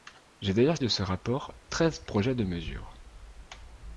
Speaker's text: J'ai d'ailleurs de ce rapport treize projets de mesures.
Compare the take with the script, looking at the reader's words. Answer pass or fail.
pass